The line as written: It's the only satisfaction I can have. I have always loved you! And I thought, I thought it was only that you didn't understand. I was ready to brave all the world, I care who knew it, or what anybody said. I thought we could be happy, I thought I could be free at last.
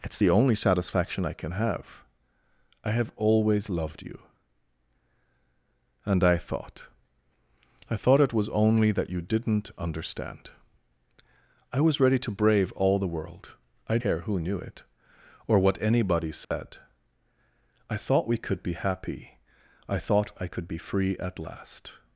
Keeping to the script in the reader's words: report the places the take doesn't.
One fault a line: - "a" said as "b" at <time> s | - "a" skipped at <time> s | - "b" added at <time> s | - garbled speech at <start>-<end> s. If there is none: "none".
none